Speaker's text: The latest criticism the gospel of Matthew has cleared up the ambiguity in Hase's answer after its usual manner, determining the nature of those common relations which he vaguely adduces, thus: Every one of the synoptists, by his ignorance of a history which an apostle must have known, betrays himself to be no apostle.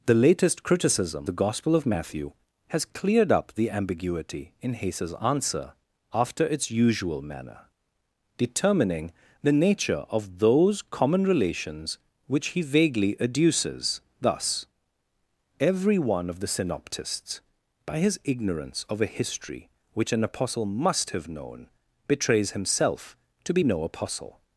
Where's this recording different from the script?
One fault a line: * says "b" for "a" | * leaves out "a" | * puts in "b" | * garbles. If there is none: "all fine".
all fine